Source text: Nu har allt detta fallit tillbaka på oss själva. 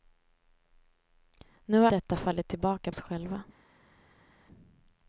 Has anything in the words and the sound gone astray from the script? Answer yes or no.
yes